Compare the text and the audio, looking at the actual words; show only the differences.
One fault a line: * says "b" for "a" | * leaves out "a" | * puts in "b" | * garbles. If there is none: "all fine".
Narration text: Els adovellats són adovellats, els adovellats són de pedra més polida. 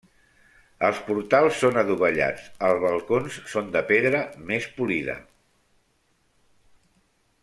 * says "portals" for "adovellats"
* says "balcons" for "adovellats"